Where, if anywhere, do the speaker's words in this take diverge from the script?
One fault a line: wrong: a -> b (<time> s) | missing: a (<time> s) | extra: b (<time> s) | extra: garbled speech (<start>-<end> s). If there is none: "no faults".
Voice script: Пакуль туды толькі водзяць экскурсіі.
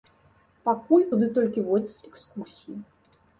no faults